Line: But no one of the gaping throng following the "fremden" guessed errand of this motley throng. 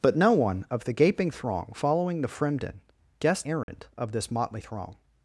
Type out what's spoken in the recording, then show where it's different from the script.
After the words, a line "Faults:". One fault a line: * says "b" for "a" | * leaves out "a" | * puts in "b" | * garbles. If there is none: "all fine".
But no one of the gaping throng following the "fremden" guessed errand of this motley throng.
Faults:
all fine